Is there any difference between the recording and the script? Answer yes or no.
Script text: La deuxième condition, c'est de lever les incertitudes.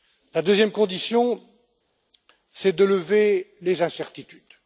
no